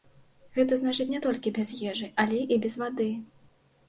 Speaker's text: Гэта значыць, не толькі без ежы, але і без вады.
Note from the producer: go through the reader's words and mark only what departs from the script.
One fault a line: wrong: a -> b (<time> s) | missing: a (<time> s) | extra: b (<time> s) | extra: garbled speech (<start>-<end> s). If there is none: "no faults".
no faults